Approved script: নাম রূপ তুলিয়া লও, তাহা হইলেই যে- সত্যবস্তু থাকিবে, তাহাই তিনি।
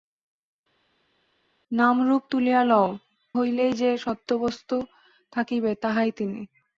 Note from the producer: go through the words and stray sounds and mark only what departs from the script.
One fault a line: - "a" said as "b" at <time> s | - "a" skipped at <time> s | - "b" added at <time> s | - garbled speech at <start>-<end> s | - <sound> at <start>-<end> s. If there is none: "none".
- "তাহা" skipped at 2.9 s